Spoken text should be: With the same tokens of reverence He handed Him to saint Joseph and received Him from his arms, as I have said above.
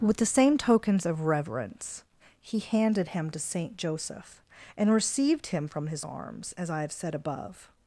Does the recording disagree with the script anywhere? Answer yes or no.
no